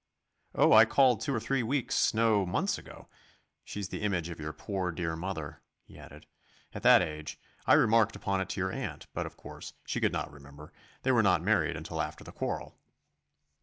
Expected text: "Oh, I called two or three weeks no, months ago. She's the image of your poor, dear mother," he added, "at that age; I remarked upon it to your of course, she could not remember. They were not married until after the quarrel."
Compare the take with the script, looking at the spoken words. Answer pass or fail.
fail